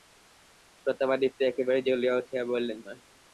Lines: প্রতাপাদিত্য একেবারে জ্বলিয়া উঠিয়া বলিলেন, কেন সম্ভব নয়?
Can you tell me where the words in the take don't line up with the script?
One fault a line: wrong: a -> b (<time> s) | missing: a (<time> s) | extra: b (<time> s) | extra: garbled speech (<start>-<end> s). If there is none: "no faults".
missing: কেন সম্ভব (2.8 s)